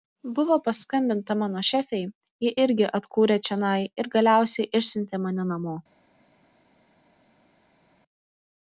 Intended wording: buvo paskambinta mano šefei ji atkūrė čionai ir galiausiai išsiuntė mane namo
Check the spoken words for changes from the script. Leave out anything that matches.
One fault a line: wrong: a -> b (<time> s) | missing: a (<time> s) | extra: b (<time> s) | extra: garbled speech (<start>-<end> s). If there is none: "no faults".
extra: irgi (2.6 s)